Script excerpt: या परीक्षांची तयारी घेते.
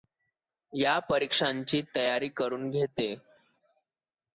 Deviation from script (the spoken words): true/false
true